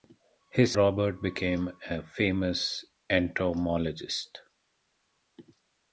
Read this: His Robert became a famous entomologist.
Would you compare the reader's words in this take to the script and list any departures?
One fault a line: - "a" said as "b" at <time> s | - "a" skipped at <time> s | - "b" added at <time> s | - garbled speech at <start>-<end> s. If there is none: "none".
none